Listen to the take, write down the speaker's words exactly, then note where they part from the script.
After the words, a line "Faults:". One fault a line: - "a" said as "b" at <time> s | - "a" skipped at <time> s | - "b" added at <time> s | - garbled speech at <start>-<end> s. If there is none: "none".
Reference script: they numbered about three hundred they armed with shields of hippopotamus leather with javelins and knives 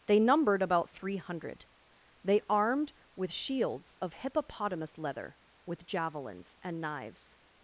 they numbered about three hundred they armed with shields of hippopotamus leather with javelins and knives
Faults:
none